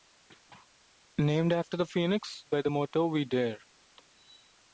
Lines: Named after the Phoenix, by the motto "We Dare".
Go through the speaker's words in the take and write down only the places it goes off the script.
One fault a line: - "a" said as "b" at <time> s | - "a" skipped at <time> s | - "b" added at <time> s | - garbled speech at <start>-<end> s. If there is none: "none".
none